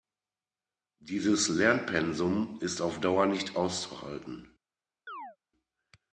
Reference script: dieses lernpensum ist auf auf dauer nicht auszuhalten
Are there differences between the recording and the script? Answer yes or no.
yes